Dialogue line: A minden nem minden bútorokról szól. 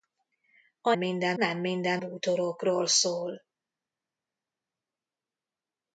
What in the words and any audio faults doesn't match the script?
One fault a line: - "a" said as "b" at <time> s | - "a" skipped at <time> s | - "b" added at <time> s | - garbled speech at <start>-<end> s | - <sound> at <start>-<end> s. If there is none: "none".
none